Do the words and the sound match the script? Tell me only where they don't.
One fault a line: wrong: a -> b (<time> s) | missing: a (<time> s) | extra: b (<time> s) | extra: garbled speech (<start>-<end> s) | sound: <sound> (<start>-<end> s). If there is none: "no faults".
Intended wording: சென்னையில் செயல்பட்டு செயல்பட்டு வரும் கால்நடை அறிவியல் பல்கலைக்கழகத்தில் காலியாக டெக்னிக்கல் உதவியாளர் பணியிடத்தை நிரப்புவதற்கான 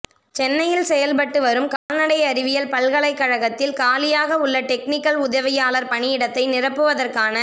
missing: செயல்பட்டு (1.4 s)
sound: dropout (1.8-1.9 s)
extra: உள்ள (4.4 s)